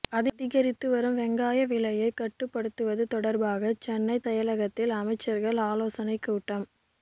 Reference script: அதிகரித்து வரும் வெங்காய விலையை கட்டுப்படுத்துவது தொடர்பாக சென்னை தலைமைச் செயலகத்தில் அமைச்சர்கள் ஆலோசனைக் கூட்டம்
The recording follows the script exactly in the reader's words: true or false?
false